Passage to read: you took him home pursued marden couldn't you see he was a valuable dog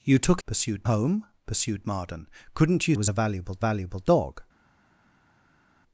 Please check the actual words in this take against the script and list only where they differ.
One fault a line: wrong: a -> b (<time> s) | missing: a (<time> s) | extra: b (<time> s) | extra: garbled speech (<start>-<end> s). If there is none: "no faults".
wrong: him -> pursued (0.5 s)
missing: see he (2.9 s)
extra: valuable (3.6 s)